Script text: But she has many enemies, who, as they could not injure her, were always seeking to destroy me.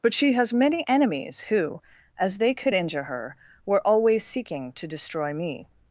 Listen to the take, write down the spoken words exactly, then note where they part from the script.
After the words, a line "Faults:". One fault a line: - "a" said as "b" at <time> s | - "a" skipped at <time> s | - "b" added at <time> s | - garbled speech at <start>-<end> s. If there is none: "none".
But she has many enemies, who, as they could injure her, were always seeking to destroy me.
Faults:
- "not" skipped at 2.7 s